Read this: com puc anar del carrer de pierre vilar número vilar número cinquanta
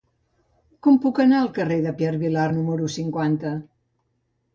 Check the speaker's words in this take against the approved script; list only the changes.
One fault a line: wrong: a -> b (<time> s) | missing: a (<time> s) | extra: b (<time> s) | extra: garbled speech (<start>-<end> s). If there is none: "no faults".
wrong: del -> al (1.4 s)
missing: vilar número (2.9 s)